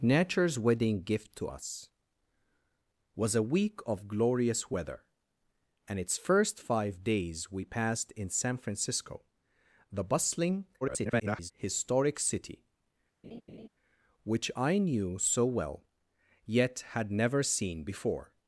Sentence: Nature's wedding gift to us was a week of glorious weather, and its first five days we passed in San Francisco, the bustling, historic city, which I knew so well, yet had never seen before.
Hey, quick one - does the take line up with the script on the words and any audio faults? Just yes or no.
no